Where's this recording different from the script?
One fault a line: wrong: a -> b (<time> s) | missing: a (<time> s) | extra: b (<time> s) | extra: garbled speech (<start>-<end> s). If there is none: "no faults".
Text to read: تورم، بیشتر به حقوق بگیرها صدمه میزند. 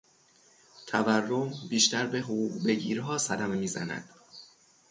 no faults